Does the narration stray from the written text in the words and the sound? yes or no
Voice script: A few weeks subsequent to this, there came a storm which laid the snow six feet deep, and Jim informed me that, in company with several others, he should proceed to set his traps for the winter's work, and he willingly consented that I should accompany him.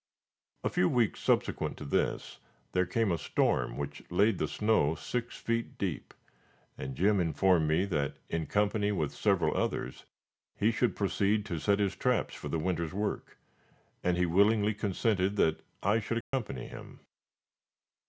yes